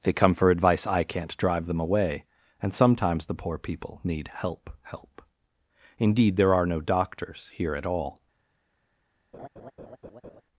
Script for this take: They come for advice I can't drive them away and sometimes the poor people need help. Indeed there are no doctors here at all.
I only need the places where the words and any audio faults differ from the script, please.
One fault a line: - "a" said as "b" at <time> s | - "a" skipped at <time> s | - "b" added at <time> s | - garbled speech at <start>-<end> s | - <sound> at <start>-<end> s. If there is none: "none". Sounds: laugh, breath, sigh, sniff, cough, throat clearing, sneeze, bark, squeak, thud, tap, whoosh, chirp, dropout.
- "help" added at 4.8 s
- laugh at 9.3-10.4 s